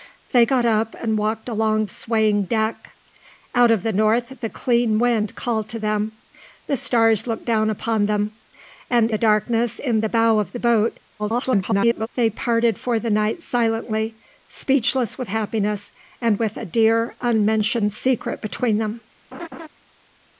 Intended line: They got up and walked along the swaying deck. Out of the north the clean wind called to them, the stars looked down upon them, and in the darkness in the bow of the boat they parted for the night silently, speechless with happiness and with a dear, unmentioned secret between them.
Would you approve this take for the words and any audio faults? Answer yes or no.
no